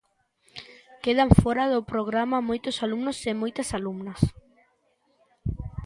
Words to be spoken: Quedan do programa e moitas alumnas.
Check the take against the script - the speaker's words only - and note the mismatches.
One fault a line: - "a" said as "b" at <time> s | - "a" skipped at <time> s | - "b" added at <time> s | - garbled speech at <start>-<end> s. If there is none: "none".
- "fóra" added at 1.4 s
- "moitos alumnos" added at 2.5 s